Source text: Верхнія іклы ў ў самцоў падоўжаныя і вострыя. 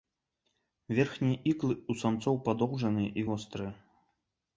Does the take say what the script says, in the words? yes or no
no